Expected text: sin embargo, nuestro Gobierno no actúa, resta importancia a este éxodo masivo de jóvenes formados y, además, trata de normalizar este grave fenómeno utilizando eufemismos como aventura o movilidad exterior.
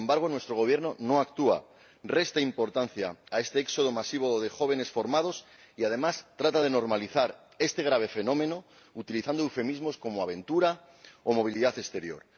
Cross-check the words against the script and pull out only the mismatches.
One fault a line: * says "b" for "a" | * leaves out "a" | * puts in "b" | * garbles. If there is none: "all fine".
all fine